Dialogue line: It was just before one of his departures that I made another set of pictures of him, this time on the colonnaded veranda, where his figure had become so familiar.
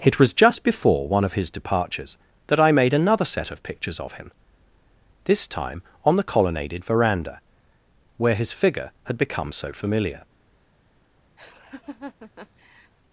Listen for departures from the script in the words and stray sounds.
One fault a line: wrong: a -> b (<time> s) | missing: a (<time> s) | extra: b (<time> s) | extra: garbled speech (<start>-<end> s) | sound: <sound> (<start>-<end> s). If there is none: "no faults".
sound: laugh (11.4-12.9 s)